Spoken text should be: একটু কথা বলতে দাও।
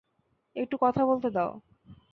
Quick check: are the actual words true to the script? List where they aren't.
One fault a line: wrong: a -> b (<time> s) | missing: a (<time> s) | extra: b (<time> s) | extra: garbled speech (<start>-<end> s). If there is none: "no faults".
no faults